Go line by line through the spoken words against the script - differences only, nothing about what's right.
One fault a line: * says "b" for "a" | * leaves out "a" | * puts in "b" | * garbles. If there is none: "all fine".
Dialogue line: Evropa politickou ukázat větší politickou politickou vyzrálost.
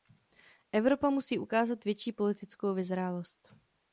* says "musí" for "politickou"
* leaves out "politickou"